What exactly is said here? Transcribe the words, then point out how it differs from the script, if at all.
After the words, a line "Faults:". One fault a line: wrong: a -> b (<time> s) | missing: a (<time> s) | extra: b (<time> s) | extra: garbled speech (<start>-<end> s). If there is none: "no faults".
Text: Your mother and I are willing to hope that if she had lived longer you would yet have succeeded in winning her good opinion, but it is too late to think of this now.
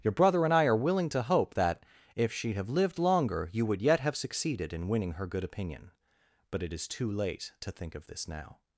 Your brother and I are willing to hope that if she have lived longer you would yet have succeeded in winning her good opinion, but it is too late to think of this now.
Faults:
wrong: mother -> brother (0.1 s)
wrong: had -> have (2.5 s)